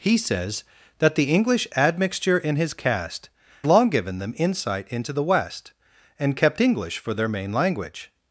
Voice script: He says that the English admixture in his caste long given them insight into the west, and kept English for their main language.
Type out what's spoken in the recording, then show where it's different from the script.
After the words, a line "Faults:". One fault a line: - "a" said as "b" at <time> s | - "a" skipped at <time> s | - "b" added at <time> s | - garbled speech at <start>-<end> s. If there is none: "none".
He says that the English admixture in his caste long given them insight into the west, and kept English for their main language.
Faults:
none